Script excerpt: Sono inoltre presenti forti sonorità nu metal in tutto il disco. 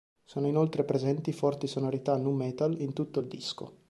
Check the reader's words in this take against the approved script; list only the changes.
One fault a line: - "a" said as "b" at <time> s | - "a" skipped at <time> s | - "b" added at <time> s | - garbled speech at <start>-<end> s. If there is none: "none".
none